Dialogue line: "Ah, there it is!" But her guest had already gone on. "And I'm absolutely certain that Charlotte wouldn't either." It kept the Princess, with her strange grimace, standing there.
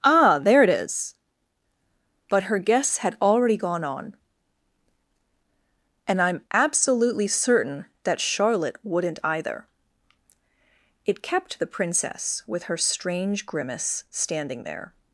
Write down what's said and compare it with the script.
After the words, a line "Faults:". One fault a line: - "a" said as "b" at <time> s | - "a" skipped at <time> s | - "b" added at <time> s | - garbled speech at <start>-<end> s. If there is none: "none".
"Ah, there it is!" But her guests had already gone on. "And I'm absolutely certain that Charlotte wouldn't either." It kept the Princess, with her strange grimace, standing there.
Faults:
- "guest" said as "guests" at 2.6 s